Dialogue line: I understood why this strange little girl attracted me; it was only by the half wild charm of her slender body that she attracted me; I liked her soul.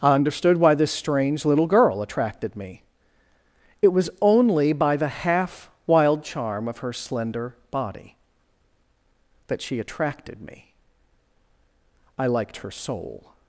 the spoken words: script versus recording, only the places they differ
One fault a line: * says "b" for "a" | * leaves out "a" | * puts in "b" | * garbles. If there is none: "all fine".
all fine